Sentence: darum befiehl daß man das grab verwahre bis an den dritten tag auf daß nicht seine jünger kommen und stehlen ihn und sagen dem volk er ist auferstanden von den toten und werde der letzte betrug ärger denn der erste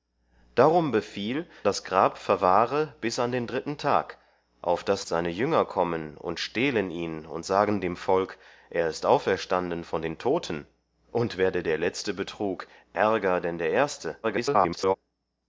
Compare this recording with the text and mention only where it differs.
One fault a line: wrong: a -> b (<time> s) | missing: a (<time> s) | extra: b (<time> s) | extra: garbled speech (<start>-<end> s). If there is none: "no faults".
missing: daß man (1.4 s)
missing: nicht (5.0 s)
extra: garbled speech (14.2-15.0 s)